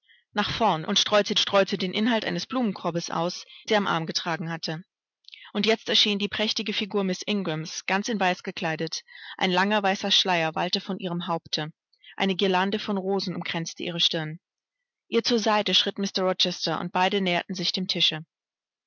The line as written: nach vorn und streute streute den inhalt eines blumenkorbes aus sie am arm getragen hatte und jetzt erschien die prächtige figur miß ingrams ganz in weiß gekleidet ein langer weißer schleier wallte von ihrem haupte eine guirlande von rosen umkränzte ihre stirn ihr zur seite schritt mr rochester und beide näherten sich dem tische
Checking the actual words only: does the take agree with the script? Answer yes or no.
yes